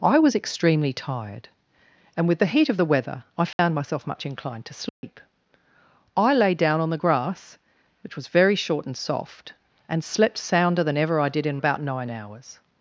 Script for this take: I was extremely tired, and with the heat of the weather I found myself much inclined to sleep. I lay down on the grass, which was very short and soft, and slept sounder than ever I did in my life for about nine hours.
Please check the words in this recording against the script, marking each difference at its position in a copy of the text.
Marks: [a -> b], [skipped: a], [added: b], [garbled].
I was extremely tired, and with the heat of the weather I found myself much inclined to sleep. I lay down on the grass, which was very short and soft, and slept sounder than ever I did in [skipped: my life for] about nine hours.